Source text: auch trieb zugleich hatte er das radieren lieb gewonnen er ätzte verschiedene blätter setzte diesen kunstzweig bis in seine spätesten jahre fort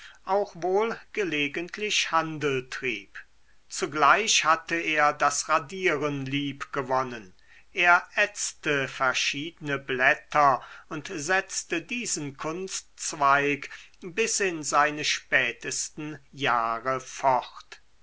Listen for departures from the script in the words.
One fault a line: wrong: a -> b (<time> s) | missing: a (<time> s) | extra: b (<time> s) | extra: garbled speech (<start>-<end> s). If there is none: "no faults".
extra: wohl gelegentlich handel (0.6 s)
extra: und (10.9 s)